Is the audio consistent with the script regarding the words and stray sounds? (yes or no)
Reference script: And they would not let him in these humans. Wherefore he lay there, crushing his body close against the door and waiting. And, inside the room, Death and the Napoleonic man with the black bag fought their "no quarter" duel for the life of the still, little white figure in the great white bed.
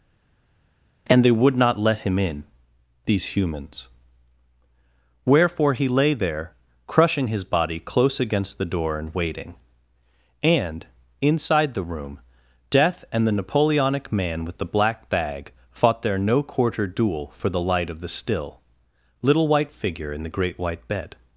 no